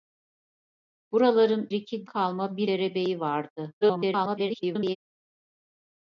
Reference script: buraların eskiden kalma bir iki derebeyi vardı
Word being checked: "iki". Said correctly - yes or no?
no